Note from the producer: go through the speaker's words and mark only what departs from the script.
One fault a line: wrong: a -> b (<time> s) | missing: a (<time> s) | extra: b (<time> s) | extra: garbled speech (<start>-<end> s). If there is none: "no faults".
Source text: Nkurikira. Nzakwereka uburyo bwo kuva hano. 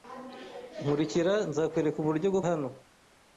missing: kuva (2.4 s)